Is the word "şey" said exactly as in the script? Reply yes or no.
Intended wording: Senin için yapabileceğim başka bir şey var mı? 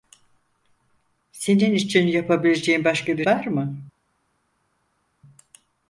no